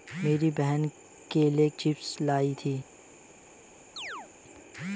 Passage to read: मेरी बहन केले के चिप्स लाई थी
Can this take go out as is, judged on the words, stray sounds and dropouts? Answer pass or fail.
fail